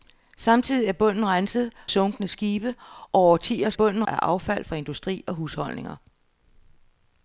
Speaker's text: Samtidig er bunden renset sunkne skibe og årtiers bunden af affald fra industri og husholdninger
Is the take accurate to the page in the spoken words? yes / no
yes